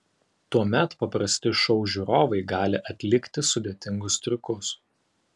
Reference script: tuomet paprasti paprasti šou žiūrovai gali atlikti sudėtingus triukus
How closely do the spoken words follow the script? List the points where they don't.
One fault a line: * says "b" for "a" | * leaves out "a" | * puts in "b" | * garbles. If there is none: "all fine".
* leaves out "paprasti"